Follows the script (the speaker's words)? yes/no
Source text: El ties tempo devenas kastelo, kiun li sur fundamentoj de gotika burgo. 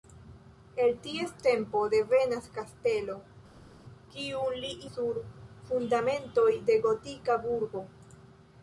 yes